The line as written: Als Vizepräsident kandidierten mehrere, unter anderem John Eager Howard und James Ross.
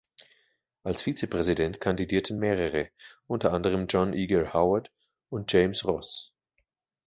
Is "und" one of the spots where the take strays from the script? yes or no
no